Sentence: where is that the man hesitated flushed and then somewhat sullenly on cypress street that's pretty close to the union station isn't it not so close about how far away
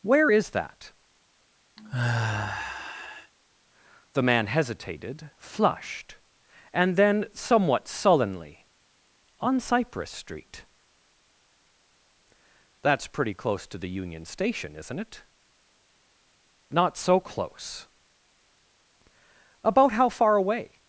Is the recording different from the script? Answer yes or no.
no